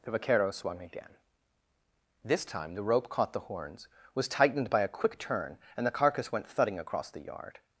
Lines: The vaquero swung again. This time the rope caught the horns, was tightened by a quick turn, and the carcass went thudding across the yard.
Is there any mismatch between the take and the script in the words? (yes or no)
no